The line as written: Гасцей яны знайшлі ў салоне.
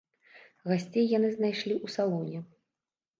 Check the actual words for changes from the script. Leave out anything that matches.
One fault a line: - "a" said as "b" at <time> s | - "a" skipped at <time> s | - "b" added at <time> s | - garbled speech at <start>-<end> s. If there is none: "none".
none